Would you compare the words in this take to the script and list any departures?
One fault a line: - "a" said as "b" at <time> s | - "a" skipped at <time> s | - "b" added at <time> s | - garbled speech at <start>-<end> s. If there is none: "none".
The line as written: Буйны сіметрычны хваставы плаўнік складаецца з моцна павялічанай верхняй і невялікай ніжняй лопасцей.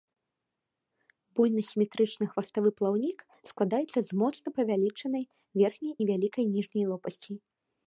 - "і" skipped at 6.0 s